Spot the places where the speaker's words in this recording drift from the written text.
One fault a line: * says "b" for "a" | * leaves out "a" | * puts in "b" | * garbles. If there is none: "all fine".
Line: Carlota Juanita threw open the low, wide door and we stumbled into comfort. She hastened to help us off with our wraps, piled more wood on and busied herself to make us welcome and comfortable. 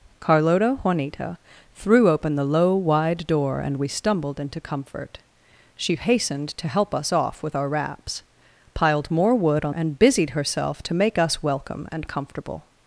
all fine